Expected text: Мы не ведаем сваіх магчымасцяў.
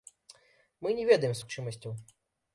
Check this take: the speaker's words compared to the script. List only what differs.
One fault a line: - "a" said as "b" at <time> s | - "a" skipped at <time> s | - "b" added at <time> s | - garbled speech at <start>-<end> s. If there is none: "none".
- "сваіх" skipped at 1.4 s